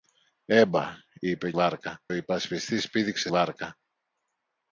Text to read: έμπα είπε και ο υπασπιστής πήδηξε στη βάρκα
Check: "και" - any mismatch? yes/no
yes